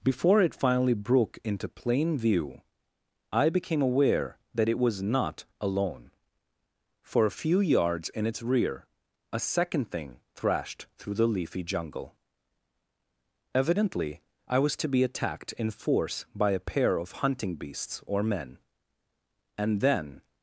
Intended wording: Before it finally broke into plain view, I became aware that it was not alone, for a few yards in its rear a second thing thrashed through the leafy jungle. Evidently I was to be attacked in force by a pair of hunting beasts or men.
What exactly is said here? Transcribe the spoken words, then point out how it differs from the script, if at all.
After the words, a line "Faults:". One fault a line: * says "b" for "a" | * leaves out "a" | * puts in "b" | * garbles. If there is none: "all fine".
Before it finally broke into plain view, I became aware that it was not alone, for a few yards in its rear a second thing thrashed through the leafy jungle. Evidently I was to be attacked in force by a pair of hunting beasts or men. And then
Faults:
* puts in "And then"